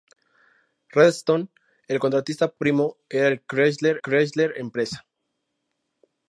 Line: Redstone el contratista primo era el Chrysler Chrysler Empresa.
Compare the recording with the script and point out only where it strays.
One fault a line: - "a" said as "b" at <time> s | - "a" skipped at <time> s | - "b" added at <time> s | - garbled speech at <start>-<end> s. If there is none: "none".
none